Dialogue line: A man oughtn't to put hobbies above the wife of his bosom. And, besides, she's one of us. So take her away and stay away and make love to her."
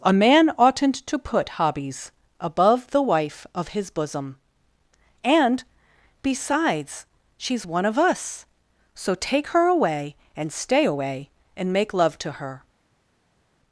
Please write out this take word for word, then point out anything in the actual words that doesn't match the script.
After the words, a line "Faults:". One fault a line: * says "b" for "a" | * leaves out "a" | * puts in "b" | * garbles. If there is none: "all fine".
A man oughtn't to put hobbies above the wife of his bosom. And, besides, she's one of us. So take her away and stay away and make love to her."
Faults:
all fine